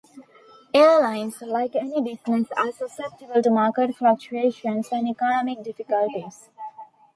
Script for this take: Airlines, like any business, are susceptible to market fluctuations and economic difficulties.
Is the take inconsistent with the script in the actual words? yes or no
no